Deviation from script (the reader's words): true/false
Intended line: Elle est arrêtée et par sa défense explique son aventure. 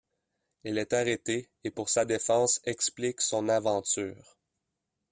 true